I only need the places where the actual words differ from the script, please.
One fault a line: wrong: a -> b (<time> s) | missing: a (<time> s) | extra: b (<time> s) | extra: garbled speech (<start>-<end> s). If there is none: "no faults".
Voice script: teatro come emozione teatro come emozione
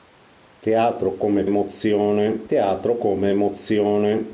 no faults